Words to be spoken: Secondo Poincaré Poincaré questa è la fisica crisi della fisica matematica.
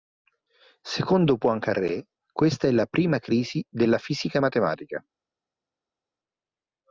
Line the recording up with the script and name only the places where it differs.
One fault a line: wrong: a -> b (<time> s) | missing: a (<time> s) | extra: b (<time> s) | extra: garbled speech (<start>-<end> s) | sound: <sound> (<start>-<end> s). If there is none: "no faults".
missing: Poincaré (2.1 s)
wrong: fisica -> prima (2.9 s)